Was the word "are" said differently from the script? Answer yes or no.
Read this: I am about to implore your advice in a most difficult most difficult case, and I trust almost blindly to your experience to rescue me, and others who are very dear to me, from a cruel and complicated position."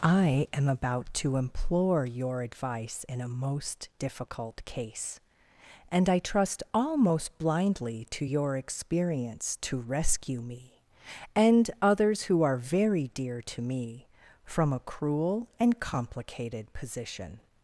no